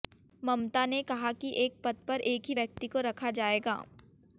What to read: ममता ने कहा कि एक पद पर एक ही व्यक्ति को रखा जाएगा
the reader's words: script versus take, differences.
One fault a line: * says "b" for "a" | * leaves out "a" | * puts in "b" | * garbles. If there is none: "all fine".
all fine